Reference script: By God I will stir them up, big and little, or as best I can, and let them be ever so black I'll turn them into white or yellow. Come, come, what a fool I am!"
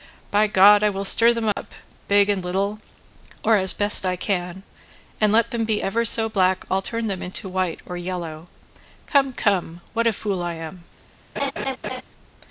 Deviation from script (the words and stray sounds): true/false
true